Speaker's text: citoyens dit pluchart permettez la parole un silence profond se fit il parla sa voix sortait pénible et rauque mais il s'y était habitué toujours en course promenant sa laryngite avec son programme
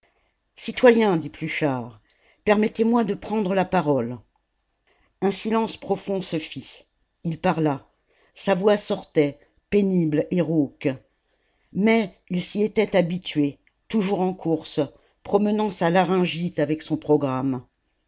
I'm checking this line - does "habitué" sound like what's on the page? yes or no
yes